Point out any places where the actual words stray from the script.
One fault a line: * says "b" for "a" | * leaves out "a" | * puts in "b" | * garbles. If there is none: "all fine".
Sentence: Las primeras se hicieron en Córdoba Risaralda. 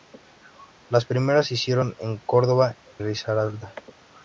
all fine